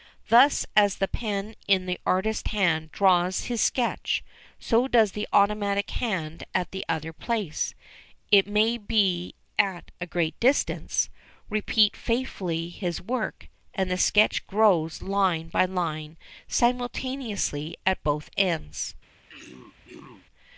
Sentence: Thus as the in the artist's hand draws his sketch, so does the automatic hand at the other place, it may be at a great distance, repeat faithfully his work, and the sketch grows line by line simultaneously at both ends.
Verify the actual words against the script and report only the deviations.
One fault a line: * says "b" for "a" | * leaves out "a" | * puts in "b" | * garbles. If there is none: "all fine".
* puts in "pen"